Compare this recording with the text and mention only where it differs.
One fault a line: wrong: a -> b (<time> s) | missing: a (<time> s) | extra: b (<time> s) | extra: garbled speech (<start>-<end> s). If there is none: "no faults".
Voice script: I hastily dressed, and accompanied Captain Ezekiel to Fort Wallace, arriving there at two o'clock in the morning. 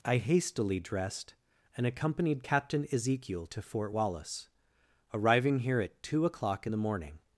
wrong: there -> here (5.6 s)